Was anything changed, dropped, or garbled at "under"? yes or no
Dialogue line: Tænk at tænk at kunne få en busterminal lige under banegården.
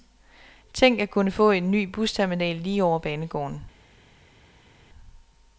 yes